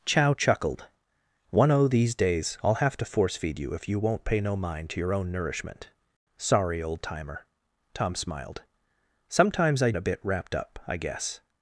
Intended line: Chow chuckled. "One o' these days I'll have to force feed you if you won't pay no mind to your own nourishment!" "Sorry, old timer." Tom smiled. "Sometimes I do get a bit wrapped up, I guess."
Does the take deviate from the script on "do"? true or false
true